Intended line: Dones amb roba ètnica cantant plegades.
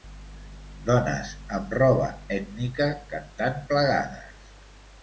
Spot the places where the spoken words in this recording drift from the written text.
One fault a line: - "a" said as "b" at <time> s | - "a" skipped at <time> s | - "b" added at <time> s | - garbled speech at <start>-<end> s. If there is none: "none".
none